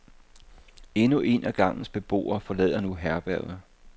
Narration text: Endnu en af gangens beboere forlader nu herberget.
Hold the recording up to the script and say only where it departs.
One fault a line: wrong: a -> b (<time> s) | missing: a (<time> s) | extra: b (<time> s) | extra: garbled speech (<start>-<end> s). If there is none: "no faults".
no faults